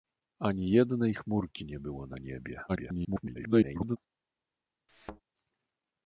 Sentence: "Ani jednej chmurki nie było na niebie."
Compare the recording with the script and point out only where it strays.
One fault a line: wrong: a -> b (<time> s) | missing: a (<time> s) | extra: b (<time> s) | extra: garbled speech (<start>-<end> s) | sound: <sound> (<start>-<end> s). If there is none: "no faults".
extra: garbled speech (2.7-4.0 s)
sound: thud (4.9-5.2 s)